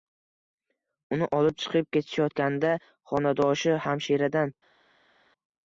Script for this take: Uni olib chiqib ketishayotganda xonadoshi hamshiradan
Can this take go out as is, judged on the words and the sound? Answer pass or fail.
pass